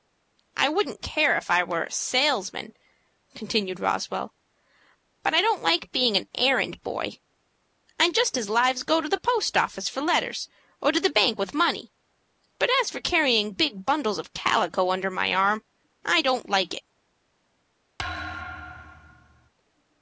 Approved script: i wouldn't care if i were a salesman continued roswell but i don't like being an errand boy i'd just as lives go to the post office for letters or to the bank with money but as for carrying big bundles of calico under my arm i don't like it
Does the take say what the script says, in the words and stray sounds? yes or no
no